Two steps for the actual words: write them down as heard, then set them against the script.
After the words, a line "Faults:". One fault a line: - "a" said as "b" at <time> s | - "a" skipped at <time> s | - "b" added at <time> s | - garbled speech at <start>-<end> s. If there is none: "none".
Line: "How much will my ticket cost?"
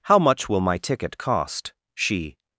"How much will my ticket cost?" she
Faults:
- "she" added at 1.9 s